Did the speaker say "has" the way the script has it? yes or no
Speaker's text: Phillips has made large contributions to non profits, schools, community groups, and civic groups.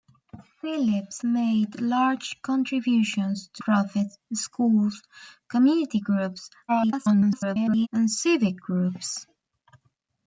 no